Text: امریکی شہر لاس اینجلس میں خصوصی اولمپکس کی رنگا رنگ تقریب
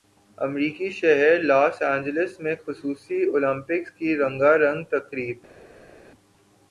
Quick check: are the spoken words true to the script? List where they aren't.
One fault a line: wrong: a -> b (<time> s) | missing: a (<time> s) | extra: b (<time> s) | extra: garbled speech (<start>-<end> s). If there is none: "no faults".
no faults